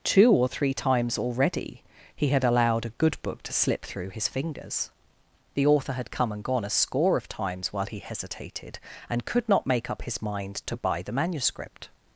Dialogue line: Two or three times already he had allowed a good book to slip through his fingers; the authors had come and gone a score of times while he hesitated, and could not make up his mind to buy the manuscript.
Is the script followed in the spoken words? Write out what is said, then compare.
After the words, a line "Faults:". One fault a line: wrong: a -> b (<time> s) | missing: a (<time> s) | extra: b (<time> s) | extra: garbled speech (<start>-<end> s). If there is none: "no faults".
Two or three times already he had allowed a good book to slip through his fingers; the author had come and gone a score of times while he hesitated, and could not make up his mind to buy the manuscript.
Faults:
wrong: authors -> author (5.7 s)